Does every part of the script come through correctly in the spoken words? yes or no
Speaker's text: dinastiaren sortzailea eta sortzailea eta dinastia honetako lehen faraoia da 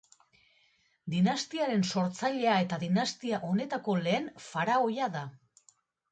no